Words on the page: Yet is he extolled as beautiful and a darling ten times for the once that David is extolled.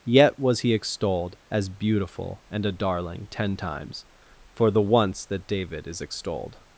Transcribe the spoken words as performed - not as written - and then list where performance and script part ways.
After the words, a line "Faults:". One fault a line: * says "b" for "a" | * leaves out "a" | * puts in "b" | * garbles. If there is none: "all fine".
Yet was he extolled as beautiful and a darling ten times for the once that David is extolled.
Faults:
* says "was" for "is"